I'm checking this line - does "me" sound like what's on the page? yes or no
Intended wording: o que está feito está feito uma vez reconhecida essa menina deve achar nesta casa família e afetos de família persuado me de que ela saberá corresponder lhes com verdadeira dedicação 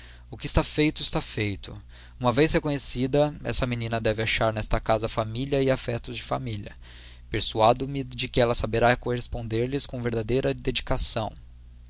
yes